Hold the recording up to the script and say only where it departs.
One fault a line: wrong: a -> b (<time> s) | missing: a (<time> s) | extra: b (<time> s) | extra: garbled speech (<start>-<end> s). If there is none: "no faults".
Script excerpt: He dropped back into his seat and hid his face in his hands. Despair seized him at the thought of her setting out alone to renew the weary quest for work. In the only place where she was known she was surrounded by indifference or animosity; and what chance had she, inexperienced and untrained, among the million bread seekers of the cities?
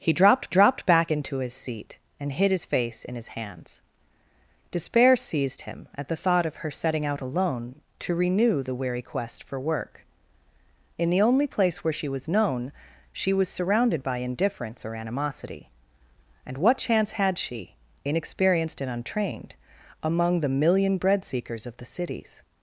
extra: dropped (0.5 s)